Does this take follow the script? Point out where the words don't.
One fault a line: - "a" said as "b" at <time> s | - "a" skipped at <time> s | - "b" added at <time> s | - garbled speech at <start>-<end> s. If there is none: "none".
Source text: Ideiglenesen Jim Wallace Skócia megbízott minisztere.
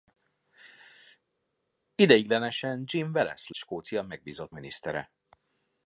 none